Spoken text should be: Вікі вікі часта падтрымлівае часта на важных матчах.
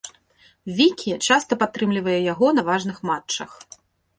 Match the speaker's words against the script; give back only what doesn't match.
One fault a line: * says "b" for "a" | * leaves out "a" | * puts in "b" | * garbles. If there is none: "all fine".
* leaves out "вікі"
* says "яго" for "часта"